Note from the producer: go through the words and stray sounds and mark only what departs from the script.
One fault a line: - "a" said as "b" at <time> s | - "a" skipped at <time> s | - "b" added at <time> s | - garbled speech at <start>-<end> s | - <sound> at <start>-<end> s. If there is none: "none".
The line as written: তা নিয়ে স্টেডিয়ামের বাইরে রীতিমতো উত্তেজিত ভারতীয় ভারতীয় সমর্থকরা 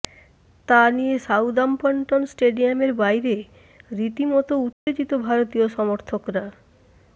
- "সাউদাম্পটন" added at 1.2 s
- dropout at 4.7-4.9 s
- "ভারতীয়" skipped at 5.7 s